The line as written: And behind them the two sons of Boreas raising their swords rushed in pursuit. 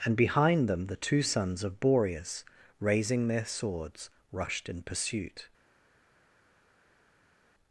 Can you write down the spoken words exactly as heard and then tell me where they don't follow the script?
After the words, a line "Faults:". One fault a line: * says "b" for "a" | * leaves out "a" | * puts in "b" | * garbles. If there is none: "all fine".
And behind them the two sons of Boreas raising their swords rushed in pursuit.
Faults:
all fine